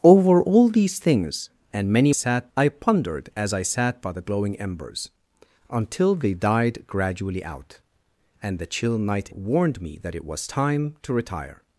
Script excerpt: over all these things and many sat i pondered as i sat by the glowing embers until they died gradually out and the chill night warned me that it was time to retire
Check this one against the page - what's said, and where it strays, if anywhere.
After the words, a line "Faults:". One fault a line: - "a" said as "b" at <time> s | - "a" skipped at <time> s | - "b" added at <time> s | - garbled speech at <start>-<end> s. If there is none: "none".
over all these things and many sat i pondered as i sat by the glowing embers until they died gradually out and the chill night warned me that it was time to retire
Faults:
none